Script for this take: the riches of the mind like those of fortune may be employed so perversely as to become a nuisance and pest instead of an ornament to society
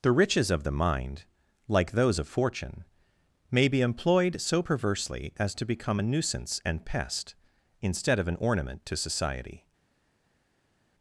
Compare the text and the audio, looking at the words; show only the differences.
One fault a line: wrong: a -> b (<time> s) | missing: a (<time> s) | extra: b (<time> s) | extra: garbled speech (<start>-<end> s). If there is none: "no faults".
no faults